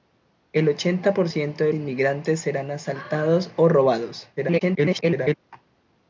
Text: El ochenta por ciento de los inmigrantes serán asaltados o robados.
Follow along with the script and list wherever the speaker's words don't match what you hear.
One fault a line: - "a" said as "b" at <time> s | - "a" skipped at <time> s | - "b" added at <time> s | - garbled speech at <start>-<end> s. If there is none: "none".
- "los" skipped at 1.7 s
- garbled speech at 4.4-5.3 s